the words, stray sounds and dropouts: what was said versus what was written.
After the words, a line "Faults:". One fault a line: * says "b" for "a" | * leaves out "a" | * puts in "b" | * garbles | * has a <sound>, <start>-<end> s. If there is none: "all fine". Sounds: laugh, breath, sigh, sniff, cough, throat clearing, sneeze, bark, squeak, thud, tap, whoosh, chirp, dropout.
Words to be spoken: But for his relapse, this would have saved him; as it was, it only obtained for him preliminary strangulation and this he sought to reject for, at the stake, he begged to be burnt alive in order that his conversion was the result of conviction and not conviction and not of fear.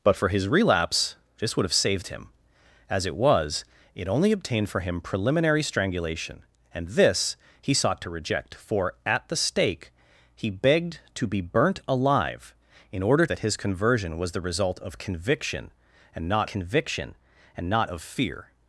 But for his relapse, this would have saved him; as it was, it only obtained for him preliminary strangulation and this he sought to reject for, at the stake, he begged to be burnt alive in order that his conversion was the result of conviction and not conviction and not of fear.
Faults:
all fine